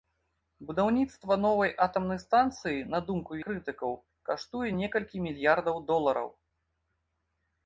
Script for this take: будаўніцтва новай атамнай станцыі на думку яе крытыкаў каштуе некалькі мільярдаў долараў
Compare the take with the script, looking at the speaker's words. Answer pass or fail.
fail